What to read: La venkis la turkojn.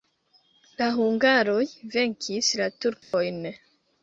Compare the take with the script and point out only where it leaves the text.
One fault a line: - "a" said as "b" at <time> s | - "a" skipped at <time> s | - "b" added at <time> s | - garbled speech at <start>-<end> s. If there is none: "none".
- "hungaroj" added at 1.0 s